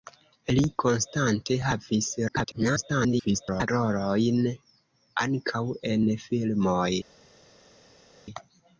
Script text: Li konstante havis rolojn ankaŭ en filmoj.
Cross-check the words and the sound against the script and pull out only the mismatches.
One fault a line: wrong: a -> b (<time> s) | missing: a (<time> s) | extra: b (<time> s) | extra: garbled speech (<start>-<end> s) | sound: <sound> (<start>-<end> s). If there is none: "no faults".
extra: garbled speech (2.3-3.7 s)